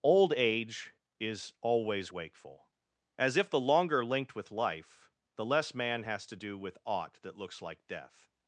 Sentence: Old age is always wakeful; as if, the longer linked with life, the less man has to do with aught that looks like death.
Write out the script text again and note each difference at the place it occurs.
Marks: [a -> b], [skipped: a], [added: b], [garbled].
Old age is always wakeful; as if, the longer linked with life, the less man has to do with aught that looks like death.